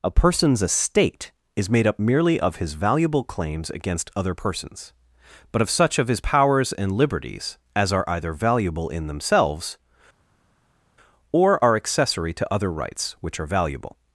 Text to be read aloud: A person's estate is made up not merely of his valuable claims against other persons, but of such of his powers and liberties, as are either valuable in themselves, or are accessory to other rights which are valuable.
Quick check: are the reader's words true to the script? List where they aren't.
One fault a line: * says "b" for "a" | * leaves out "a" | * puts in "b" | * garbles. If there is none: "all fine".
* leaves out "not"